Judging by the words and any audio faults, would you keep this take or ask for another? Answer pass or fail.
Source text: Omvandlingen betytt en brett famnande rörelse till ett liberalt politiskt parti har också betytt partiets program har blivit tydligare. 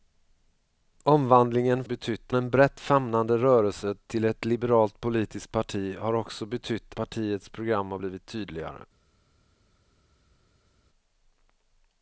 pass